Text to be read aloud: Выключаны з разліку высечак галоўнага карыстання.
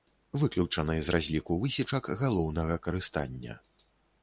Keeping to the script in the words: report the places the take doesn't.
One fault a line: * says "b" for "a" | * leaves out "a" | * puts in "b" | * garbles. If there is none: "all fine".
all fine